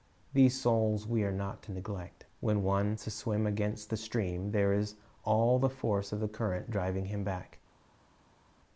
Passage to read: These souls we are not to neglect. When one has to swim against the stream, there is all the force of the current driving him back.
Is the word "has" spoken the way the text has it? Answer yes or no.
no